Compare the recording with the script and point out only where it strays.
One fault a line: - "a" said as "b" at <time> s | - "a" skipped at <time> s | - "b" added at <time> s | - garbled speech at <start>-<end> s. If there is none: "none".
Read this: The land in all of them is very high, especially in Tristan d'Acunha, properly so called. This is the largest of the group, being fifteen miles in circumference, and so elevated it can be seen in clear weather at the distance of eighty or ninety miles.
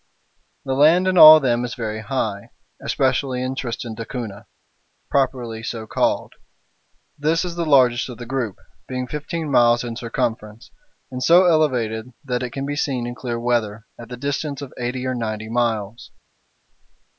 - "that" added at 12.2 s